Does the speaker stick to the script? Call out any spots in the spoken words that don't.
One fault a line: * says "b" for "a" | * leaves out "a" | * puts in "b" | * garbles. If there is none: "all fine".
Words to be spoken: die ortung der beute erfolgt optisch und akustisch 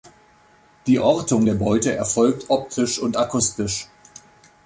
all fine